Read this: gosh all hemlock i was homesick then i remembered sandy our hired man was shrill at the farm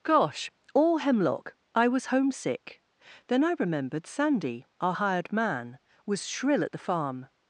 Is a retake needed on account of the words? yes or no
no